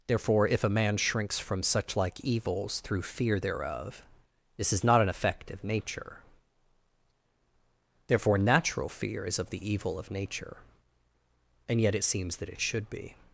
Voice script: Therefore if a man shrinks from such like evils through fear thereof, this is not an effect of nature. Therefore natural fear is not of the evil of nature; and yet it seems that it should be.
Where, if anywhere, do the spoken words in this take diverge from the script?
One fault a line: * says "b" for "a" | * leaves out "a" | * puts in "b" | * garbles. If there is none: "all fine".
* leaves out "not"